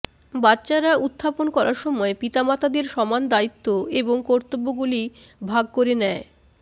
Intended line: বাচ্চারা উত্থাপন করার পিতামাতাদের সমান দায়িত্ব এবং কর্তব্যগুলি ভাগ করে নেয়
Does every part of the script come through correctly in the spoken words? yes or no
no